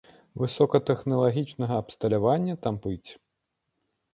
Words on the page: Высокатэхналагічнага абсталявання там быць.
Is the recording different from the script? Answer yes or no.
no